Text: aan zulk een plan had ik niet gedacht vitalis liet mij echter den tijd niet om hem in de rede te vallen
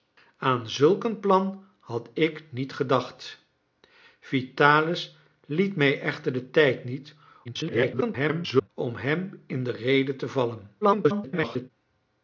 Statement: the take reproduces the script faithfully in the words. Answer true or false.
false